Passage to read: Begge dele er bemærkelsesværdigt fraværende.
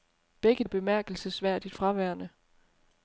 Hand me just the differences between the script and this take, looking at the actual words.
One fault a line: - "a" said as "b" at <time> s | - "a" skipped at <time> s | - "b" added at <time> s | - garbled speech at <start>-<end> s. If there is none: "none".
- "dele" skipped at 0.6 s